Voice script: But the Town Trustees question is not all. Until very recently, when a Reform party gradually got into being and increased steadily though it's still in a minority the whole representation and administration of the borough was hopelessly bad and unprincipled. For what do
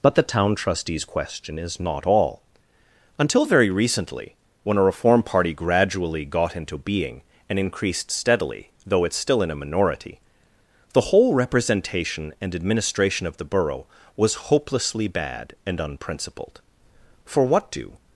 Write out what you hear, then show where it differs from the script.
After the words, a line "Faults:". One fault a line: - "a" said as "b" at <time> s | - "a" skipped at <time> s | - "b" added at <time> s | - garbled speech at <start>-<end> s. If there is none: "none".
But the Town Trustees question is not all. Until very recently, when a Reform party gradually got into being and increased steadily though it's still in a minority the whole representation and administration of the borough was hopelessly bad and unprincipled. For what do
Faults:
none